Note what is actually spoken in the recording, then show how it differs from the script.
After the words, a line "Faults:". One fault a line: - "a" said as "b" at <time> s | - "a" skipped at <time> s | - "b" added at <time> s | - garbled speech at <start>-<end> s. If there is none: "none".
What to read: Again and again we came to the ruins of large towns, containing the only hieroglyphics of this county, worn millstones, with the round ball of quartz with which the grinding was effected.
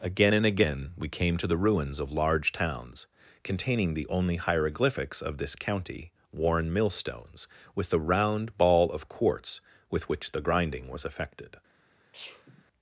Again and again we came to the ruins of large towns, containing the only hieroglyphics of this county, worn millstones, with the round ball of quartz with which the grinding was effected.
Faults:
none